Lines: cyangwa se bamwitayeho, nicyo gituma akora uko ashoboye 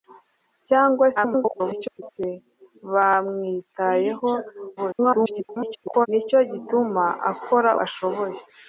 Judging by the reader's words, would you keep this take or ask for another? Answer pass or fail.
fail